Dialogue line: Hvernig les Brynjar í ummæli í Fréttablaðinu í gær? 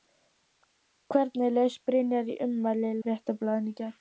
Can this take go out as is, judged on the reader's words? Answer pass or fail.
pass